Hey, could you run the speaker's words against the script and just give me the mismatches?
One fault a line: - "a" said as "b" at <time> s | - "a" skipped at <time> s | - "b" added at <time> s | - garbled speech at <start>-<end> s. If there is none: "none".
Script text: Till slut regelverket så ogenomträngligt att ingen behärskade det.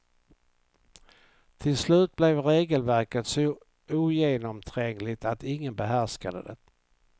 - "blev" added at 2.1 s